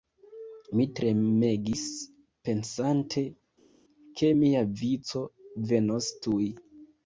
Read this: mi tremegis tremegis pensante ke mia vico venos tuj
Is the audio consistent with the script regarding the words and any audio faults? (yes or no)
no